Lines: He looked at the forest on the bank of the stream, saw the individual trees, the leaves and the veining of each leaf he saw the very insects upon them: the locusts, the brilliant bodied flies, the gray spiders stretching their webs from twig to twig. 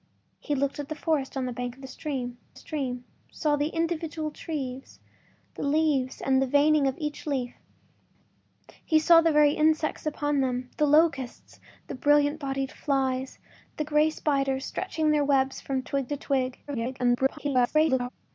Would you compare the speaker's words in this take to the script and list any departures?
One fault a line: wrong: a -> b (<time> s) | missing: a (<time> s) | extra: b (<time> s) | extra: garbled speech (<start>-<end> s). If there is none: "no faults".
extra: stream (2.5 s)
extra: garbled speech (16.7-18.1 s)